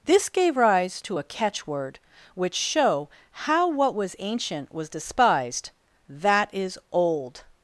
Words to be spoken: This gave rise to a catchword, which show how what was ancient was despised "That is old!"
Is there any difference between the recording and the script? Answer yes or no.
no